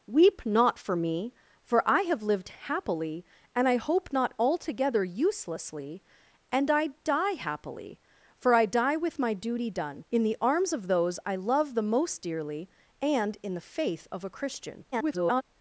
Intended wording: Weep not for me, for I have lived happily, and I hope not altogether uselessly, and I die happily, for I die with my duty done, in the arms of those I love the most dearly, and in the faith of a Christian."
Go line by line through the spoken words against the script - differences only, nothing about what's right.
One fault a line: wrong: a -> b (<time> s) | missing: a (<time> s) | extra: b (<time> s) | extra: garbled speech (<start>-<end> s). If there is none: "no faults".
extra: garbled speech (14.9-15.4 s)